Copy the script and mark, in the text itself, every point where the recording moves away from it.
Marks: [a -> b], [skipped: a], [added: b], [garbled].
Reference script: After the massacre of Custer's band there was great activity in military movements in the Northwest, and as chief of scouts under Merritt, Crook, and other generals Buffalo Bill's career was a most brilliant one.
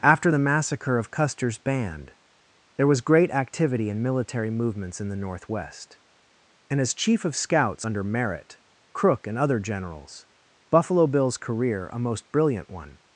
After the massacre of Custer's band there was great activity in military movements in the Northwest, and as chief of scouts under Merritt, Crook, and other generals Buffalo Bill's career [skipped: was] a most brilliant one.